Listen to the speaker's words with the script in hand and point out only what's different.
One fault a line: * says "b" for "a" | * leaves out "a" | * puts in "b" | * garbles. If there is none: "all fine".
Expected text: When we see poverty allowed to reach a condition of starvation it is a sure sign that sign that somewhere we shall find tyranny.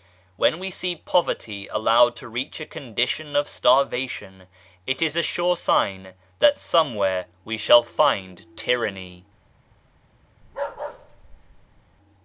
* leaves out "sign that"